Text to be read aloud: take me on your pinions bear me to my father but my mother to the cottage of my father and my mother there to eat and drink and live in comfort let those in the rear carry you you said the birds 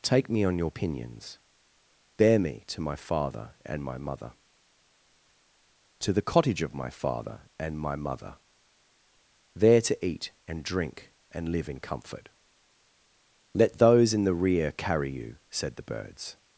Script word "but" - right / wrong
wrong